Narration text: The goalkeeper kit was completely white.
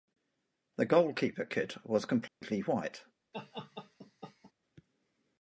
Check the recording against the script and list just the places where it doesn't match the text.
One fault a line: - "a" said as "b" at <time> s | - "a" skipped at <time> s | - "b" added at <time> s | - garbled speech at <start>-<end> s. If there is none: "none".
none